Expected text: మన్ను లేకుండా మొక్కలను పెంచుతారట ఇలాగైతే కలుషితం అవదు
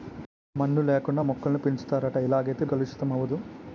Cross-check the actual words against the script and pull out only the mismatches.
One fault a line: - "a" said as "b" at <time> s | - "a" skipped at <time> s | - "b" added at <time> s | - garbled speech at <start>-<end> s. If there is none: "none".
none